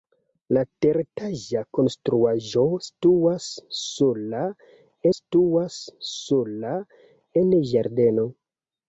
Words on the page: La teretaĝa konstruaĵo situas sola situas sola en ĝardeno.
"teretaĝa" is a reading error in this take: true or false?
false